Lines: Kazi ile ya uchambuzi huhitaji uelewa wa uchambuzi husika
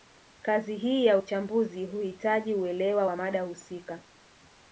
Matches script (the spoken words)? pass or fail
fail